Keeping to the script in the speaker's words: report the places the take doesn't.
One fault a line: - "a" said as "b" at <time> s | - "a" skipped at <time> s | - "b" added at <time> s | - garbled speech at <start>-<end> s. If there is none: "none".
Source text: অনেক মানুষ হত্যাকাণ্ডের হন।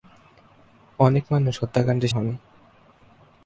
none